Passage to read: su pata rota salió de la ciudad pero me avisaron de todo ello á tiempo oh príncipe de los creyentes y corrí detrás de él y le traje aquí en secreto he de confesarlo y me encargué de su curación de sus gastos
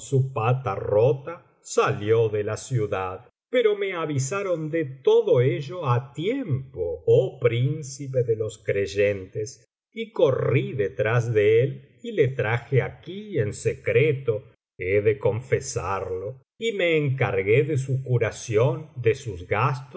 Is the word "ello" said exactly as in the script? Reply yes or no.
yes